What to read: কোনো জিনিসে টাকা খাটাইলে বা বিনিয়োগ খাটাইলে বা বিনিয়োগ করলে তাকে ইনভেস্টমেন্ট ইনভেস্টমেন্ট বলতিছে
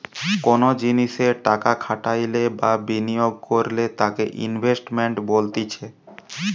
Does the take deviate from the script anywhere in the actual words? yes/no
yes